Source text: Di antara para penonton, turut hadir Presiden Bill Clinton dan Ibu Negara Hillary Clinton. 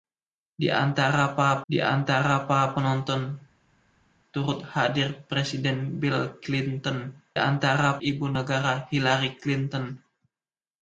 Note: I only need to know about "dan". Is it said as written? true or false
false